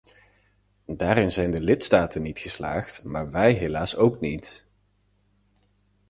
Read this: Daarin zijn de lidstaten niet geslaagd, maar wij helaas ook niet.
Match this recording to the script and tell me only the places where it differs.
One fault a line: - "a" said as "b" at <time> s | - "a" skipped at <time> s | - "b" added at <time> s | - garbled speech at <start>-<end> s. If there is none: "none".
none